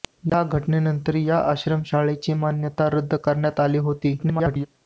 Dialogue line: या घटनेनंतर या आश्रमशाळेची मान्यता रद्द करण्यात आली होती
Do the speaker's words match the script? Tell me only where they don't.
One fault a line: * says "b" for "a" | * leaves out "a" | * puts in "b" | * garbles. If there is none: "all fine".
* garbles